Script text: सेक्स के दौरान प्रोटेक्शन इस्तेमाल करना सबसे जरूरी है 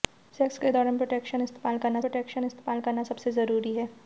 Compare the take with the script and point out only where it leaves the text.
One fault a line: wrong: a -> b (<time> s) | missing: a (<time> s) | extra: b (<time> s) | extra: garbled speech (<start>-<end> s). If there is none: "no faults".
extra: प्रोटेक्शन इस्तेमाल करना (2.0 s)